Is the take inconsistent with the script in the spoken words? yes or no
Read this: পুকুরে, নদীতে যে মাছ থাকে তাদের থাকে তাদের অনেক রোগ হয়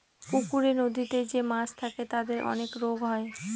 yes